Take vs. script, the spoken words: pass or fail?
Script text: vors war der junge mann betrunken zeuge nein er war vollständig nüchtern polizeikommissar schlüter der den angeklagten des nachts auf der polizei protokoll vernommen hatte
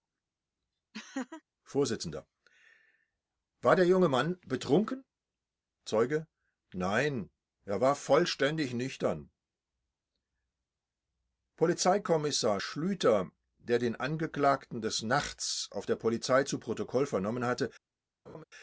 fail